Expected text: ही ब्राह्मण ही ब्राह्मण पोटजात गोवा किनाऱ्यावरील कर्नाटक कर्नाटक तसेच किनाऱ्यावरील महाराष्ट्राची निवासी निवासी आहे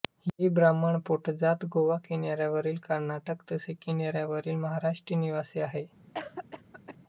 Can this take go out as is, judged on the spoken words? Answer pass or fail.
fail